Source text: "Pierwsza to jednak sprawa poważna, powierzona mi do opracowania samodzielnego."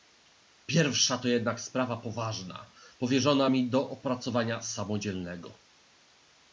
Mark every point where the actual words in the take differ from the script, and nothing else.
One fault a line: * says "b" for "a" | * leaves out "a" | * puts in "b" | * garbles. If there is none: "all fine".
all fine